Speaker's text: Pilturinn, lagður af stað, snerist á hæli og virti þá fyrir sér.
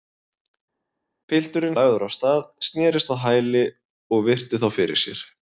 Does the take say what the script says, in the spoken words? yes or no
yes